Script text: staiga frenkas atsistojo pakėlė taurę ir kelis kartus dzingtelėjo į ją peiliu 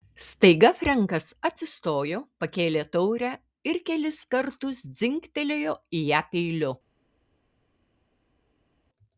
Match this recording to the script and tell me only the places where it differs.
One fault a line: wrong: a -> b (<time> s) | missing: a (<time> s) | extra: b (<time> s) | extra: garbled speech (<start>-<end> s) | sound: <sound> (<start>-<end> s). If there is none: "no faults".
no faults